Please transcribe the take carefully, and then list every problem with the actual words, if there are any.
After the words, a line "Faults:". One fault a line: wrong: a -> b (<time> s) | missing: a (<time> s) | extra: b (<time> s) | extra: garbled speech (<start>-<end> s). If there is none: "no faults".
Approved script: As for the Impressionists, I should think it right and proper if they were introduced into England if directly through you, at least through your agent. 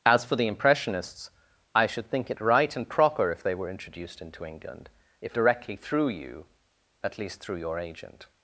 As for the Impressionists, I should think it right and proper if they were introduced into England if directly through you, at least through your agent.
Faults:
no faults